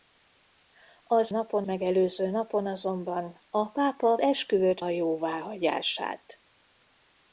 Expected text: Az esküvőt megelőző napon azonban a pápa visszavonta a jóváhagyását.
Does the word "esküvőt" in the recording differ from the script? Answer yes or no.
yes